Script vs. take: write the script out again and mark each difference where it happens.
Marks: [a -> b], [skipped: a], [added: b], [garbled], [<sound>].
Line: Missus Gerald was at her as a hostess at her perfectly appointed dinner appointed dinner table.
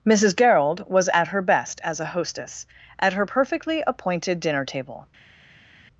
Missus Gerald was at her [added: best] as a hostess at her perfectly appointed dinner [skipped: appointed dinner] table.